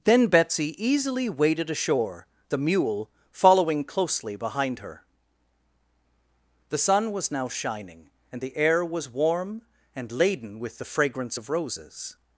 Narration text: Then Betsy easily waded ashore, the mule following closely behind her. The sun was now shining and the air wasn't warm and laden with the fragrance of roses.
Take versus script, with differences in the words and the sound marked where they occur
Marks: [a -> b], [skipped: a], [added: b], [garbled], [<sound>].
Then Betsy easily waded ashore, the mule following closely behind her. The sun was now shining and the air [wasn't -> was] warm and laden with the fragrance of roses.